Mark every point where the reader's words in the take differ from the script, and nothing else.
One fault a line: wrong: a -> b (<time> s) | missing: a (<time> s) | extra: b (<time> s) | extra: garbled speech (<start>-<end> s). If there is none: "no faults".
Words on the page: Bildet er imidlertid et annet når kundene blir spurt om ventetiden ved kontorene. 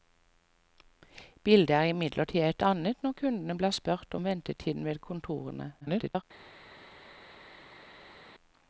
extra: garbled speech (5.8-6.2 s)